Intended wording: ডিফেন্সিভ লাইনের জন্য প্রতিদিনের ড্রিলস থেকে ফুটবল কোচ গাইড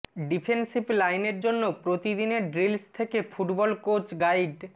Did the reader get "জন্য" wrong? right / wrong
right